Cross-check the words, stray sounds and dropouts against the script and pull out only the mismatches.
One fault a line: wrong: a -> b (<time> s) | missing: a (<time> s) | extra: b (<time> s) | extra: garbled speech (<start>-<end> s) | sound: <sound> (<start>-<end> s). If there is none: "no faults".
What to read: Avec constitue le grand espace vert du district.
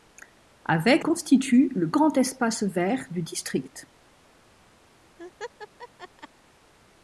sound: laugh (5.2-6.3 s)